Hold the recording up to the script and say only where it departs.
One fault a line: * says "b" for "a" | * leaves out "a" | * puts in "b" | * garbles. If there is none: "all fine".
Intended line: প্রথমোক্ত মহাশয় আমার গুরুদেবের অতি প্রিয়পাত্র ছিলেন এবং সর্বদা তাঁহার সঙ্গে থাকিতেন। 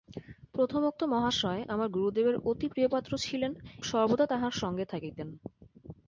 * leaves out "এবং"